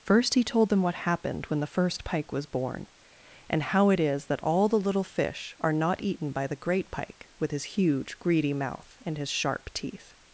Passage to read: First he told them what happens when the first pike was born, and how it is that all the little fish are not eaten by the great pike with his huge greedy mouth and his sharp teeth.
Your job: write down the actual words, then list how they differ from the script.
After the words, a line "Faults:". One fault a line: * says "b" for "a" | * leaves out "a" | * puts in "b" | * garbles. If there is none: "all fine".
First he told them what happened when the first pike was born, and how it is that all the little fish are not eaten by the great pike with his huge greedy mouth and his sharp teeth.
Faults:
* says "happened" for "happens"